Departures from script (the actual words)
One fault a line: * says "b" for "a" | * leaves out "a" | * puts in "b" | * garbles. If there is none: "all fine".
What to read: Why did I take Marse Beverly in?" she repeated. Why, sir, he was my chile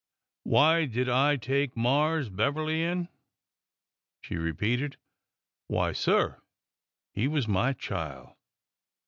all fine